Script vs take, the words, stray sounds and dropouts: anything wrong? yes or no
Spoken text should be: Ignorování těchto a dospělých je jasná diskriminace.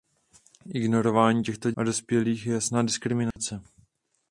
yes